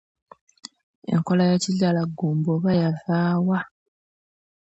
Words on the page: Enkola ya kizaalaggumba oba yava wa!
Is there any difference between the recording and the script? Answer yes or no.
no